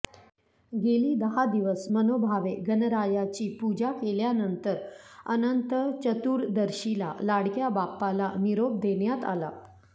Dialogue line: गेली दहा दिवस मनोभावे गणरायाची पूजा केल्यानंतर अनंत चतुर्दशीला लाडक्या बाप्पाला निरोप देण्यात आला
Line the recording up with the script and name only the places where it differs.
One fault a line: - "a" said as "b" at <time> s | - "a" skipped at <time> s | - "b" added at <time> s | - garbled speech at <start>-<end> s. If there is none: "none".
none